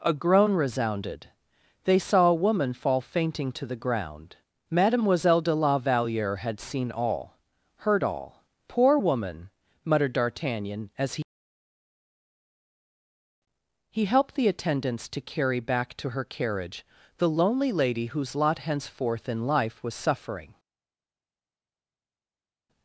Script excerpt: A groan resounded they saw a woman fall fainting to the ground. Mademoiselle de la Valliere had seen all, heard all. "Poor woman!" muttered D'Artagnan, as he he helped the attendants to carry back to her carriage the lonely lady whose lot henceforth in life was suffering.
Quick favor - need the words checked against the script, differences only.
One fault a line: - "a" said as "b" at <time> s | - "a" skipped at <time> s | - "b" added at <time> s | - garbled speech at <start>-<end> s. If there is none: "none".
none